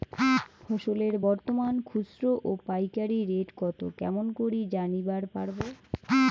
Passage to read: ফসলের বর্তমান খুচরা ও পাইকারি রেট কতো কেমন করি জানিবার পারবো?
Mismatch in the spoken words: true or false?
false